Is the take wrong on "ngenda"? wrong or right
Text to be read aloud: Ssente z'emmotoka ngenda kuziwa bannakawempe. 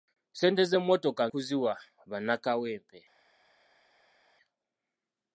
wrong